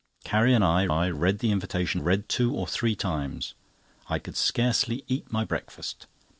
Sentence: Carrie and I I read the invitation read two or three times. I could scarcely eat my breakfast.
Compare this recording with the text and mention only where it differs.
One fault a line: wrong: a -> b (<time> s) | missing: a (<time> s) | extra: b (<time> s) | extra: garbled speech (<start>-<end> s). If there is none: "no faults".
no faults